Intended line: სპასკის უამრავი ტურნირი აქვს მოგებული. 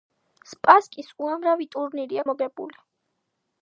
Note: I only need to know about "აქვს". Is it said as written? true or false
false